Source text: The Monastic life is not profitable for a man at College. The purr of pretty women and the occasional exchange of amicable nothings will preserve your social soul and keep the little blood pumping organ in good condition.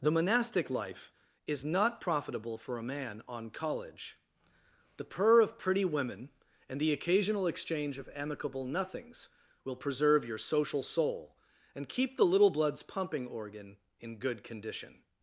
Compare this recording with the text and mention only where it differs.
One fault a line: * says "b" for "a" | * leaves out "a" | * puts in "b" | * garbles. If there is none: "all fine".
* says "on" for "at"
* says "bloods" for "blood"